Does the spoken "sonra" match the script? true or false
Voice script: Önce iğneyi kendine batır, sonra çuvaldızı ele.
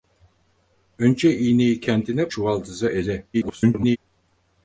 false